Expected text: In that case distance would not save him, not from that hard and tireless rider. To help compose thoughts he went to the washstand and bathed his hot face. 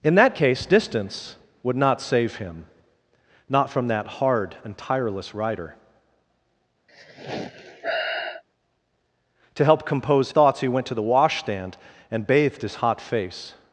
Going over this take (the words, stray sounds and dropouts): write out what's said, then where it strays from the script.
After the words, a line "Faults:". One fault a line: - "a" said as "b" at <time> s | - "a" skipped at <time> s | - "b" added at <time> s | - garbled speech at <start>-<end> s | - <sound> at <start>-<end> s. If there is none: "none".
In that case distance would not save him, not from that hard and tireless rider. To help compose thoughts he went to the washstand and bathed his hot face.
Faults:
- sigh at 6.9-8.4 s